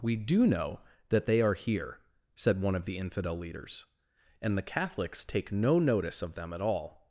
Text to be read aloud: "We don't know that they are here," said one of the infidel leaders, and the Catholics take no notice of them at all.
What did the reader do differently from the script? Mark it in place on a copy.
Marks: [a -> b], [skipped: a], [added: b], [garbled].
"We [don't -> do] know that they are here," said one of the infidel leaders, and the Catholics take no notice of them at all.